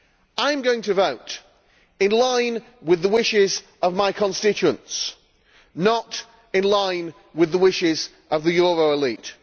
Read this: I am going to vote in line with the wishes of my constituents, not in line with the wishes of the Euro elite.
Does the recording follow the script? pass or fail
pass